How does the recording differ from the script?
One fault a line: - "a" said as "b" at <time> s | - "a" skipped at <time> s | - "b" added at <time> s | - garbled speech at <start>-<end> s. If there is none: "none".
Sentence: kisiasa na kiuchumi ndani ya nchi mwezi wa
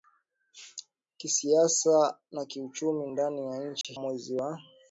none